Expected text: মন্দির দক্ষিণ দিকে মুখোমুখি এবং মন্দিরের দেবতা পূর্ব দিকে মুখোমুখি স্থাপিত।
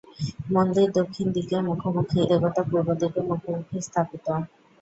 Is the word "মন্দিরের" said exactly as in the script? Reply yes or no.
no